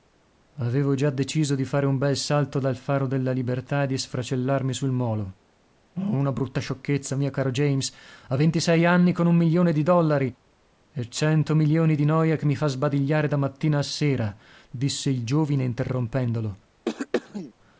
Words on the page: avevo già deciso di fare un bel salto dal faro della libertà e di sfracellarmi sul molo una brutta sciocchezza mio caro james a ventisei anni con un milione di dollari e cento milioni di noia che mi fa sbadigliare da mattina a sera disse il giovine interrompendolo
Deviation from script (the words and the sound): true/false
true